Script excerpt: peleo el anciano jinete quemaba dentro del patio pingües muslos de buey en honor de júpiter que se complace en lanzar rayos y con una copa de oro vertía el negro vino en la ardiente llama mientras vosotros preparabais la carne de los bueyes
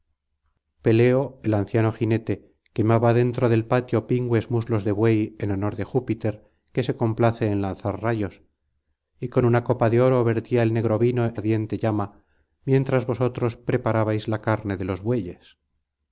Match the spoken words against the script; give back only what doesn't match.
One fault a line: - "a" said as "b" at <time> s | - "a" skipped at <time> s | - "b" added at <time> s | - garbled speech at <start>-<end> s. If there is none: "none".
- "en la" skipped at 11.3 s